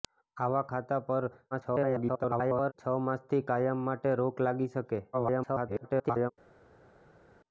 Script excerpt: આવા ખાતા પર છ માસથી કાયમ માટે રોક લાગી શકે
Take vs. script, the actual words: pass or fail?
fail